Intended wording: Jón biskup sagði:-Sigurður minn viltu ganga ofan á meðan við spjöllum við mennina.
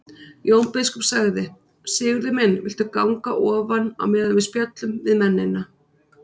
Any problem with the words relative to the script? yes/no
no